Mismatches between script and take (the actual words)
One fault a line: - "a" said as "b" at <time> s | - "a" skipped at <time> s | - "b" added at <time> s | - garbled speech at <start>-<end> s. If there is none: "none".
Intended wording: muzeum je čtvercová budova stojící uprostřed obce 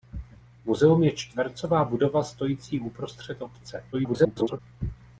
- garbled speech at 3.9-4.6 s